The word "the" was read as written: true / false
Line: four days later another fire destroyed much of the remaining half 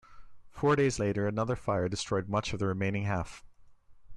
true